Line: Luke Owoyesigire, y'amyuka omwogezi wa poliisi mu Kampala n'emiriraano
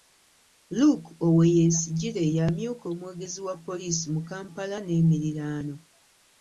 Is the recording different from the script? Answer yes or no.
no